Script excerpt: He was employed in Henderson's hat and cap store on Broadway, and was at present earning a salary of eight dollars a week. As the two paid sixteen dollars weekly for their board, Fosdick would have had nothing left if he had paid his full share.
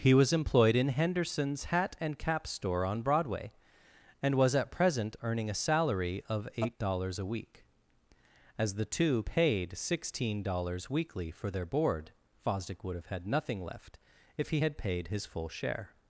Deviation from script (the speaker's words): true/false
false